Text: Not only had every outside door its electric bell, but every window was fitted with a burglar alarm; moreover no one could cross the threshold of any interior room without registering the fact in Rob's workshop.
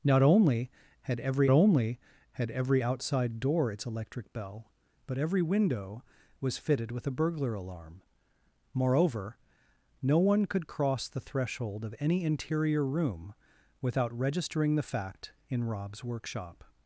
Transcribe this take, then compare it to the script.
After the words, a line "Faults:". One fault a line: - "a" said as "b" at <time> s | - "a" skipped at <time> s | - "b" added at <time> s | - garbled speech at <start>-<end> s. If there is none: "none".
Not only had every only had every outside door its electric bell, but every window was fitted with a burglar alarm; moreover no one could cross the threshold of any interior room without registering the fact in Rob's workshop.
Faults:
- "only had every" added at 1.5 s